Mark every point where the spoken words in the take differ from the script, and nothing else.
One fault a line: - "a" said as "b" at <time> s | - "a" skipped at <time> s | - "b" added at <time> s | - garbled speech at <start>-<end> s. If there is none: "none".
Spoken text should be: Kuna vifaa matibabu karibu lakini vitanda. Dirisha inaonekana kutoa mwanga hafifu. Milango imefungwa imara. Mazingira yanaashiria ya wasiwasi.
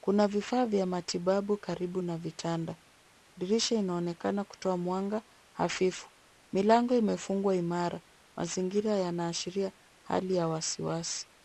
- "vya" added at 0.7 s
- "lakini" said as "na" at 2.0 s
- "hali" added at 10.0 s